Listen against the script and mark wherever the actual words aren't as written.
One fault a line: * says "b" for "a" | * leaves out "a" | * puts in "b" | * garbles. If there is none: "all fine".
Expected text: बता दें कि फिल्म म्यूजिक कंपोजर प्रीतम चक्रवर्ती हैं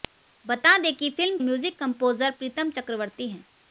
all fine